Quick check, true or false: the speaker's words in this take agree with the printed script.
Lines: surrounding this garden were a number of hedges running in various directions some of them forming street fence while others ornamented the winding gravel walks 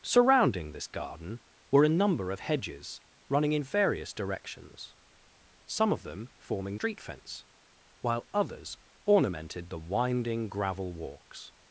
true